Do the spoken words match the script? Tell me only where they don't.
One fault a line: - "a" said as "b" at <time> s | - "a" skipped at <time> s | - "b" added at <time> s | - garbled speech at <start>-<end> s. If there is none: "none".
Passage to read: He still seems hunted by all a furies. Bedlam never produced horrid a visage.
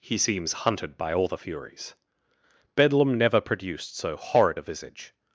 - "still" skipped at 0.2 s
- "a" said as "the" at 1.3 s
- "so" added at 4.0 s